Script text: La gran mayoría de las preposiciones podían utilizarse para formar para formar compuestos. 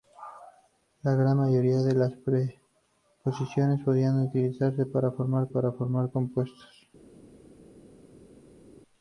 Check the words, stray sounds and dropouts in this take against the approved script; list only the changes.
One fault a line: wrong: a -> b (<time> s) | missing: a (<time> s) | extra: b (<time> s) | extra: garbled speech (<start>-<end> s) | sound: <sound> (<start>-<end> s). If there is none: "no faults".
no faults